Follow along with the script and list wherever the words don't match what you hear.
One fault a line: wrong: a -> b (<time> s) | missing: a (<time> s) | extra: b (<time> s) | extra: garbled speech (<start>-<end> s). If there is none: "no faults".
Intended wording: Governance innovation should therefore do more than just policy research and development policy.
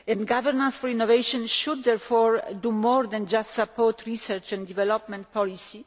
extra: for (0.8 s)
wrong: policy -> support (3.5 s)